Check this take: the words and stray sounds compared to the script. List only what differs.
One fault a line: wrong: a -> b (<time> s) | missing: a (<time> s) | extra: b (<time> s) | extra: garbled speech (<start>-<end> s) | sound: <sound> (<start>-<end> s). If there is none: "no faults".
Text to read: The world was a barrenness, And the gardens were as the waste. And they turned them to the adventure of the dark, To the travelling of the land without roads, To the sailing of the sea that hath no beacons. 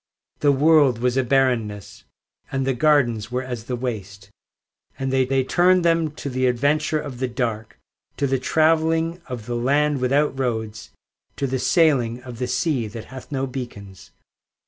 extra: they (5.3 s)